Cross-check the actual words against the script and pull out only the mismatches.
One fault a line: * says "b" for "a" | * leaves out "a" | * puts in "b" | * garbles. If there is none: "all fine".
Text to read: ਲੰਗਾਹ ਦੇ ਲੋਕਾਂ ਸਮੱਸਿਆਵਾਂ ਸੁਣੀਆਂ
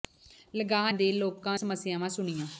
all fine